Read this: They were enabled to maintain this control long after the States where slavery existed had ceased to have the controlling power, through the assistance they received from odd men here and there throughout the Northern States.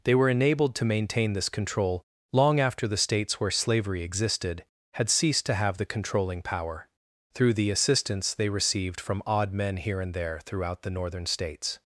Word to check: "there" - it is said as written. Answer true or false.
true